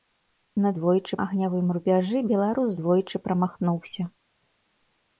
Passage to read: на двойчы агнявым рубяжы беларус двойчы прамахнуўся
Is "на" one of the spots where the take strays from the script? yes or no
no